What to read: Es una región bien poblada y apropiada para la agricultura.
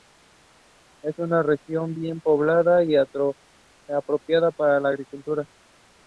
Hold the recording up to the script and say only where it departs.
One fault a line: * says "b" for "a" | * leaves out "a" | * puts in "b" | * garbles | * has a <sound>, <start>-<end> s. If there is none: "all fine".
all fine